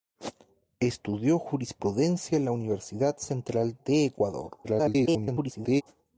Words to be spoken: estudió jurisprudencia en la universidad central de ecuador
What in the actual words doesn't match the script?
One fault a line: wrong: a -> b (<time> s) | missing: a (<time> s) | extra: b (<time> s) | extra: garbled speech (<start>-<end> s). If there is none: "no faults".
extra: garbled speech (4.6-5.8 s)